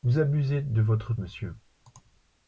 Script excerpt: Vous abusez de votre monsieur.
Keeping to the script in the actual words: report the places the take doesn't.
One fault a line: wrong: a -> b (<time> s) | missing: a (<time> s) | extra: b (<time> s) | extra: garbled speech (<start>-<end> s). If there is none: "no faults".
no faults